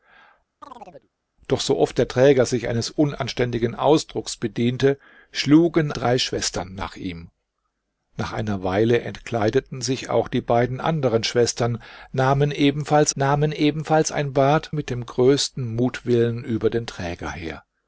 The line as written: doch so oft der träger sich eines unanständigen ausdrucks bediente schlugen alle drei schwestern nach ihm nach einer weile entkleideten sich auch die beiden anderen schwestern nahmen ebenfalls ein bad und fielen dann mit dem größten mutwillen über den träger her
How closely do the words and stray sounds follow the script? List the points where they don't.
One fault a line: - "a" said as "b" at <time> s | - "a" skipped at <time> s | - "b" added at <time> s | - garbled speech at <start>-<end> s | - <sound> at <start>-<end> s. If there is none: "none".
- chirp at 0.6-1.1 s
- "alle" skipped at 5.9 s
- "nahmen ebenfalls" added at 13.1 s
- "und fielen dann" skipped at 14.7 s